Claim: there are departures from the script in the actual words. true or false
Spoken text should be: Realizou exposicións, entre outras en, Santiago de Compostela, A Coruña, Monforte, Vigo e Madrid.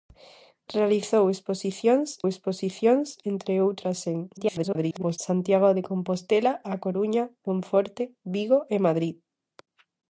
true